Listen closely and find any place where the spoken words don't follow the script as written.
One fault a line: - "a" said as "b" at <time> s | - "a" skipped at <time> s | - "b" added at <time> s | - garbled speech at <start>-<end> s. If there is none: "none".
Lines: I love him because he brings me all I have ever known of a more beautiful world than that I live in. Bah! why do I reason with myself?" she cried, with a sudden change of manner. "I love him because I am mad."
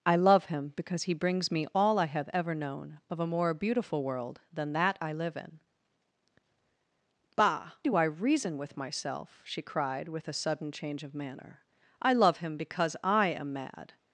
- "why" skipped at 7.7 s